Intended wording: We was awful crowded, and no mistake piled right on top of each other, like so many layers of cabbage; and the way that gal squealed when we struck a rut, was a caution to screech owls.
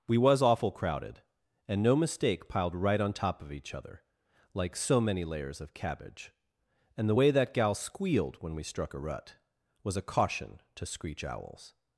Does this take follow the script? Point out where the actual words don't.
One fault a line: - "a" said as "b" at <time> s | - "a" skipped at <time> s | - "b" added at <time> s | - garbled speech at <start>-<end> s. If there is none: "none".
none